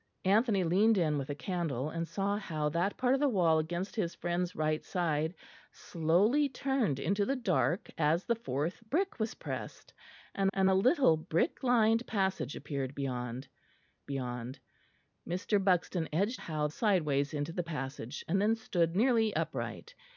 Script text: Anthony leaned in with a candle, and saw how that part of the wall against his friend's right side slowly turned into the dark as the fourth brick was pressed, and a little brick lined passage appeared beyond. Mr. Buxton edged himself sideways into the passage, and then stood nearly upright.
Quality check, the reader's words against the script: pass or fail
fail